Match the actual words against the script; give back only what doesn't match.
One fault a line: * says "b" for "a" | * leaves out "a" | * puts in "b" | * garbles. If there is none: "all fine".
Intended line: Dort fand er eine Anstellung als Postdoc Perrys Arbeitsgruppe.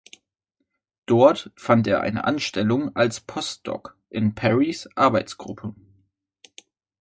* puts in "in"